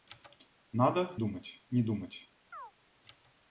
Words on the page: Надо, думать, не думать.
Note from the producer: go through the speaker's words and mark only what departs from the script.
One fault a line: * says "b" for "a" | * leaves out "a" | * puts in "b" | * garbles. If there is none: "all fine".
all fine